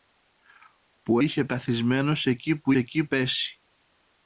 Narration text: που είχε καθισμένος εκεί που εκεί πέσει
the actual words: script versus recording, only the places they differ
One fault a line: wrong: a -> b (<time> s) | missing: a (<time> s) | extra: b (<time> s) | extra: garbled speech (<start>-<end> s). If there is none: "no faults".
no faults